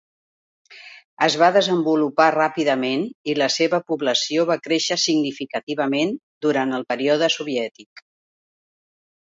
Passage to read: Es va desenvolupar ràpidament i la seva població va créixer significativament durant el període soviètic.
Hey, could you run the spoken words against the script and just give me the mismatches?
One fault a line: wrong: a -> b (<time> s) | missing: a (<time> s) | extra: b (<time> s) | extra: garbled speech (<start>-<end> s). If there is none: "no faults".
no faults